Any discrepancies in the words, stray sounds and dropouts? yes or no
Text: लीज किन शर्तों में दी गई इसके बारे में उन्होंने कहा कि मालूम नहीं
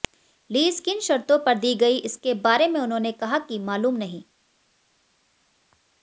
yes